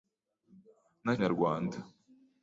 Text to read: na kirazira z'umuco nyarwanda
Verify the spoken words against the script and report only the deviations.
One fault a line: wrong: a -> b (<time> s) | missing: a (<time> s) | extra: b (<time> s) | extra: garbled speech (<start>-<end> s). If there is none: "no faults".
missing: kirazira z'umuco (1.1 s)